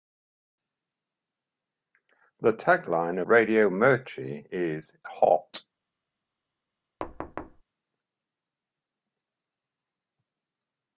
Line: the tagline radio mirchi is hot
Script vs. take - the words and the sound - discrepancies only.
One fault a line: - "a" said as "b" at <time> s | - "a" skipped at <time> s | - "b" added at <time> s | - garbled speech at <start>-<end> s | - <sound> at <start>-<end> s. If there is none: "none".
- thud at 7.0-7.6 s